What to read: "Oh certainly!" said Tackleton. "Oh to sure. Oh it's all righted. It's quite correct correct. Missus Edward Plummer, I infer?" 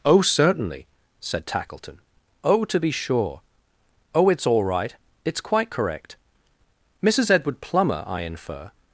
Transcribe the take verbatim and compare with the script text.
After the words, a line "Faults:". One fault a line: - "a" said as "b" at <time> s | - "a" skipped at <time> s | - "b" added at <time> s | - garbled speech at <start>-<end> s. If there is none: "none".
"Oh certainly!" said Tackleton. "Oh to be sure. Oh it's all right. It's quite correct. Missus Edward Plummer, I infer?"
Faults:
- "be" added at 2.8 s
- "righted" said as "right" at 4.6 s
- "correct" skipped at 6.2 s